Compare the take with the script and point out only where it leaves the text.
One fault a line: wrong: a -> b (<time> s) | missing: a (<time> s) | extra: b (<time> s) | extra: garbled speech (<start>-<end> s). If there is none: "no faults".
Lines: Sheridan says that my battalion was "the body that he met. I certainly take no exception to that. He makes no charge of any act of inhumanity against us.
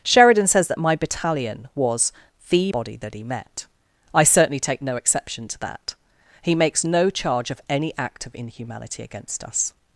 no faults